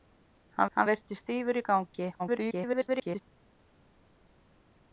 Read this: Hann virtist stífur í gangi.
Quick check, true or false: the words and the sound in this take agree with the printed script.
false